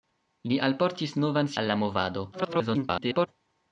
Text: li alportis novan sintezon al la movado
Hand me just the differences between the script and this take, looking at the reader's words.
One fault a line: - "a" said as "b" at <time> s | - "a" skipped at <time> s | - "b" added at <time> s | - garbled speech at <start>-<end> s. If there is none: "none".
- "sintezon" skipped at 1.5 s
- garbled speech at 2.3-3.3 s